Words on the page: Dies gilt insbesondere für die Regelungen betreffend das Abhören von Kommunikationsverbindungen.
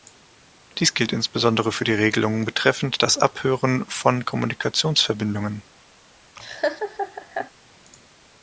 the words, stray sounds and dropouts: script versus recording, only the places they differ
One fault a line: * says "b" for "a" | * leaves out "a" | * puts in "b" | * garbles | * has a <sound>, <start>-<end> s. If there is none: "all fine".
* has a laugh, 6.4-7.5 s